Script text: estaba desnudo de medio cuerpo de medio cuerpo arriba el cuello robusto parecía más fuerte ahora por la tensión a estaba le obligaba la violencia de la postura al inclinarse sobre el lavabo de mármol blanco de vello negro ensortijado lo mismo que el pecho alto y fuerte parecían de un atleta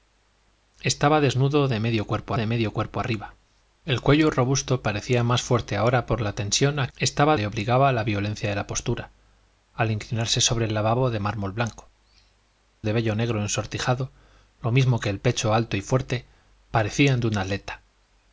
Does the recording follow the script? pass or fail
pass